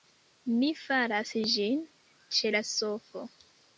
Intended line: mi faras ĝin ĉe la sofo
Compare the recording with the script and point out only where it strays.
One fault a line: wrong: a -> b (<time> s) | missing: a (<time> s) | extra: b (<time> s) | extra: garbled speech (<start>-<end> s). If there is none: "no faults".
no faults